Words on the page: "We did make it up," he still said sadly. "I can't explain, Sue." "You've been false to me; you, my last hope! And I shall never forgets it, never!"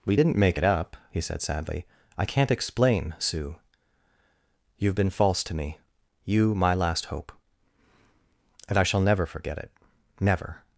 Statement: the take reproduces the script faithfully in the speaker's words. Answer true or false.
false